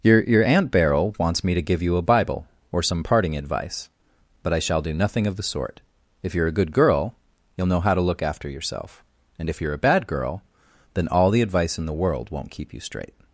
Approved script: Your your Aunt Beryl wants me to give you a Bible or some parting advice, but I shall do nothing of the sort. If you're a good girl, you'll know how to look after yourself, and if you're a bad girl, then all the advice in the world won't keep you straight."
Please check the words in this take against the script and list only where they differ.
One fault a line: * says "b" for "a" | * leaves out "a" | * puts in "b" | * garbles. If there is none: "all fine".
all fine